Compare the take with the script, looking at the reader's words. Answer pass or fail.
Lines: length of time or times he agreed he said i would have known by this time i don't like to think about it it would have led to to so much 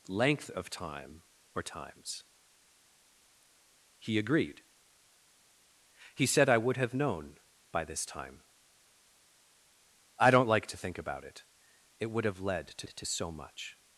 pass